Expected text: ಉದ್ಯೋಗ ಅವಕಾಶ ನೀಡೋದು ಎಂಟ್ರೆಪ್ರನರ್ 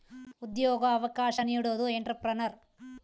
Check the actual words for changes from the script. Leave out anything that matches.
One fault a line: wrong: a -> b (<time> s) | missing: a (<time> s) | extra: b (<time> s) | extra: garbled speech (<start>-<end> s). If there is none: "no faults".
no faults